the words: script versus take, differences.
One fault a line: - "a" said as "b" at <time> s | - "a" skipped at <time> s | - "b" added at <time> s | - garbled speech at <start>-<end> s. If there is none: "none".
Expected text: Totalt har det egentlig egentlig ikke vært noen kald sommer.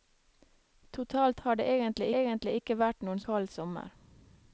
none